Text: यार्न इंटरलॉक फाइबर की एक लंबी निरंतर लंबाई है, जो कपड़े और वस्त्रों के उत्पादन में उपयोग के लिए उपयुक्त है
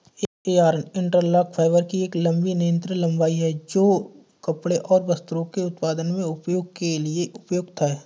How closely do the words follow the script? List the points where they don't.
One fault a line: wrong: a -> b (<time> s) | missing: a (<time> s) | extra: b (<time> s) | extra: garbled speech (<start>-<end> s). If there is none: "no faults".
no faults